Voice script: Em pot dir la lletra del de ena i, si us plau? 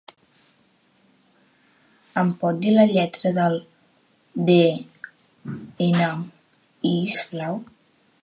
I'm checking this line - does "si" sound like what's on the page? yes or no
no